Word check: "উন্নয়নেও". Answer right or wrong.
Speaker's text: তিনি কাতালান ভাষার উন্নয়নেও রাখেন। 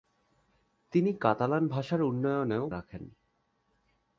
right